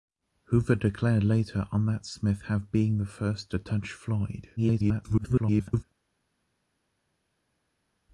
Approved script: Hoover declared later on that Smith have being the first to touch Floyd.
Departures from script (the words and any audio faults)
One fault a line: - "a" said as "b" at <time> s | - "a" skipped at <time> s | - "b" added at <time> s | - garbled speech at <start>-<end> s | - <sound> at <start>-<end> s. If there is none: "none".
- garbled speech at 4.6-5.8 s